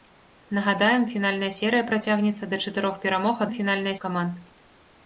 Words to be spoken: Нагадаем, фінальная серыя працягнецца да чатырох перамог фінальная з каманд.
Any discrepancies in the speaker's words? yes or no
no